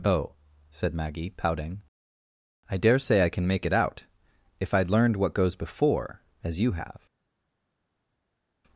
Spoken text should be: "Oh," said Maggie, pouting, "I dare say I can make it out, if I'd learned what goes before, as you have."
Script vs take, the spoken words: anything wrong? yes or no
no